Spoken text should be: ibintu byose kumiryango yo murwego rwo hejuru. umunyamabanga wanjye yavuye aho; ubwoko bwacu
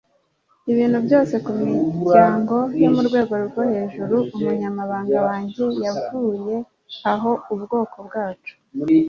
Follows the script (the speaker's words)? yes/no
yes